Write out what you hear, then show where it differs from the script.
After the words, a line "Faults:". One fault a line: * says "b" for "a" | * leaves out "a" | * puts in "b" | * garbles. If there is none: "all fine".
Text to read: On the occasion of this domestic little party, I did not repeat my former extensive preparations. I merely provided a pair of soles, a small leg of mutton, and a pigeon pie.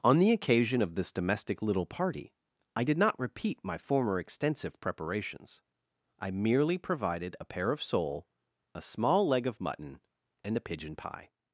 On the occasion of this domestic little party, I did not repeat my former extensive preparations. I merely provided a pair of sole, a small leg of mutton, and a pigeon pie.
Faults:
* says "sole" for "soles"